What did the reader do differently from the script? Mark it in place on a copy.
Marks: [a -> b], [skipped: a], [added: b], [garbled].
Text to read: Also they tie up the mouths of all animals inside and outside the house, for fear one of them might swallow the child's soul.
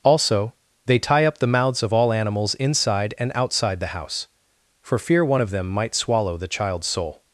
Also they tie up the mouths of all animals inside and outside the house, for fear one of them might swallow the child's soul.